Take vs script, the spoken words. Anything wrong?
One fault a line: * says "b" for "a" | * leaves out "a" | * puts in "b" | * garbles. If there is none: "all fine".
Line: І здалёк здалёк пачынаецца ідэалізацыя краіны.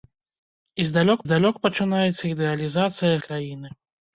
all fine